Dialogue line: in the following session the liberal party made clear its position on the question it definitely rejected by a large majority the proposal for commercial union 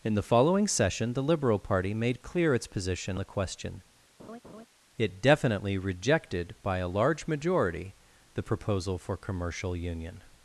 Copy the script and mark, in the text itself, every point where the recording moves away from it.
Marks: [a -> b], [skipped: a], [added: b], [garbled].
in the following session the liberal party made clear its position [skipped: on] the question it definitely rejected by a large majority the proposal for commercial union